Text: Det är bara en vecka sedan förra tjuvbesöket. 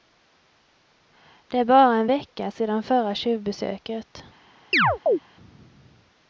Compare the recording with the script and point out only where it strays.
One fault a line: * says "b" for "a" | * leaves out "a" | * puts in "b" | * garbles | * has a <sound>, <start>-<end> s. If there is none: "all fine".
* has a chirp, 4.7-5.2 s